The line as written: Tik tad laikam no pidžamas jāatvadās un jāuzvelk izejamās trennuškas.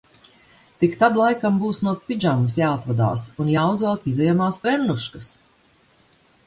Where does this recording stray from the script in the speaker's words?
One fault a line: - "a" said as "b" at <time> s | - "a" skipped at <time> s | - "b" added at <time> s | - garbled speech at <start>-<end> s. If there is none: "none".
- "būs" added at 1.6 s